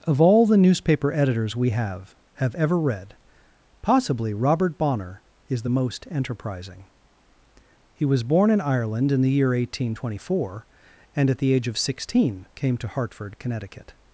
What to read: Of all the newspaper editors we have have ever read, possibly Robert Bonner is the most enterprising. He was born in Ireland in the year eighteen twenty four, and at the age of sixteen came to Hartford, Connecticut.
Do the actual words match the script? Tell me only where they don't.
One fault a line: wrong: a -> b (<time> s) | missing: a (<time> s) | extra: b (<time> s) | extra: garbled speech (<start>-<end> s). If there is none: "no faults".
no faults